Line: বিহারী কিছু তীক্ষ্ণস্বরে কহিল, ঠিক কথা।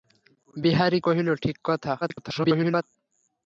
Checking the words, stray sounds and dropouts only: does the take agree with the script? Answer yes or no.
no